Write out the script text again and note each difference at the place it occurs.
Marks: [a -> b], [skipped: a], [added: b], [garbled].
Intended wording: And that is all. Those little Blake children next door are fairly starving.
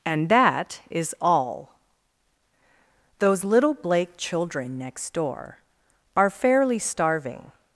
And that is all. Those little Blake children next door are fairly starving.